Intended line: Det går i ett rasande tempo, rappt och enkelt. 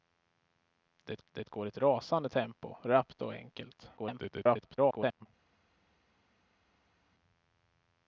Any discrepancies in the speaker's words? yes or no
yes